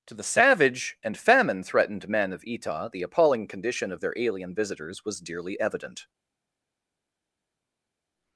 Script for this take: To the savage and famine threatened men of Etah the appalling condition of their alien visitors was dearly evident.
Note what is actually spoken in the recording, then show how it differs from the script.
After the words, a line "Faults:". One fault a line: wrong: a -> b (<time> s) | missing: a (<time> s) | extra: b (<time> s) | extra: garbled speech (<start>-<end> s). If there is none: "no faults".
To the savage and famine threatened men of Etah the appalling condition of their alien visitors was dearly evident.
Faults:
no faults